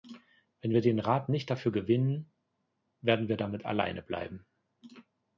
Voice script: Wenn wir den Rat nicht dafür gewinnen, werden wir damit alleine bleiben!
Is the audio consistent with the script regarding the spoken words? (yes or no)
yes